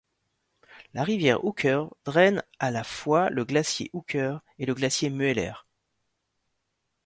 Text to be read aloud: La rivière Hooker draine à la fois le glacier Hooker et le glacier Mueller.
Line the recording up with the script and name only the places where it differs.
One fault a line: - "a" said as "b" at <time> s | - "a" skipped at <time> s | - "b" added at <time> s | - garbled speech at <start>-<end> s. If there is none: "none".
none